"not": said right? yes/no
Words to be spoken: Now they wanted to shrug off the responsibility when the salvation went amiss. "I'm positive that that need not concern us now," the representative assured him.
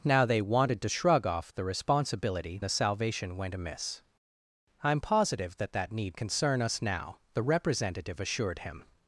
no